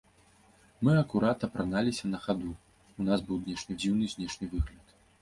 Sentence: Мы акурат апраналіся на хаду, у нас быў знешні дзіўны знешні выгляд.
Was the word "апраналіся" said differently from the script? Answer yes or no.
no